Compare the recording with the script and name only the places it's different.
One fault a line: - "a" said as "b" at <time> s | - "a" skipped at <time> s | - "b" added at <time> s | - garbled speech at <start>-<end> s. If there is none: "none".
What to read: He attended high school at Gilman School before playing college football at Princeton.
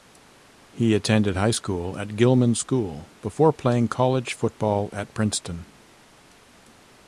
none